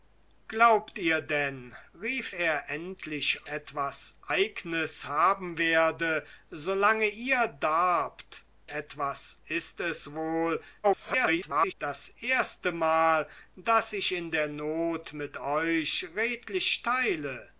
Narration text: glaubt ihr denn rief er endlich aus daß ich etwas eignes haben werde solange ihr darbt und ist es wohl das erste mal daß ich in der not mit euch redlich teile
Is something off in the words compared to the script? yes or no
yes